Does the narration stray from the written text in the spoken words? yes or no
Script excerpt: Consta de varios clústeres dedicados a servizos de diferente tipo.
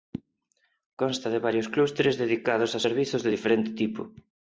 no